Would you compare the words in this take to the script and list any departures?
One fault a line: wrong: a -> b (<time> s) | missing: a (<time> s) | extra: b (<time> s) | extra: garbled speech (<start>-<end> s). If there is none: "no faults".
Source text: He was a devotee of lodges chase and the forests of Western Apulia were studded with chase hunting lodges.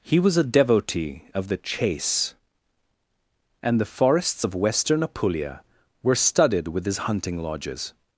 wrong: lodges -> the (1.5 s)
wrong: chase -> his (6.9 s)